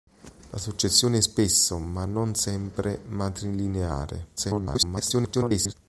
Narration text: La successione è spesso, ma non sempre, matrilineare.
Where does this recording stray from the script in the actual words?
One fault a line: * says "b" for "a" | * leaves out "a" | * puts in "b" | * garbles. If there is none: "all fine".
* garbles